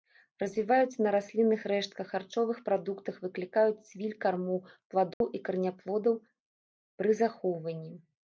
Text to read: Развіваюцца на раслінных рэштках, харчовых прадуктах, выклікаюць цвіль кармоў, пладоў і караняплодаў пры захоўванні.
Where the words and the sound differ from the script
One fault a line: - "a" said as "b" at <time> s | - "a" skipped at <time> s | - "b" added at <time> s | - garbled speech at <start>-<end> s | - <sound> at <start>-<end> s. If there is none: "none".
- dropout at 5.1-5.2 s